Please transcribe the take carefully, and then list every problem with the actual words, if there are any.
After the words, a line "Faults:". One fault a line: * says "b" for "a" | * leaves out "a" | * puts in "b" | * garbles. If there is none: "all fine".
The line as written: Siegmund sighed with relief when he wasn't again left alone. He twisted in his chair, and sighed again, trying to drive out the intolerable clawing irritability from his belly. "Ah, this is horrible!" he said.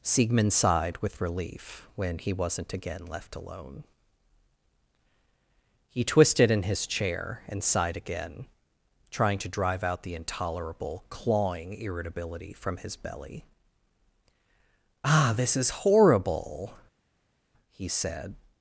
Siegmund sighed with relief when he wasn't again left alone. He twisted in his chair, and sighed again, trying to drive out the intolerable clawing irritability from his belly. "Ah, this is horrible!" he said.
Faults:
all fine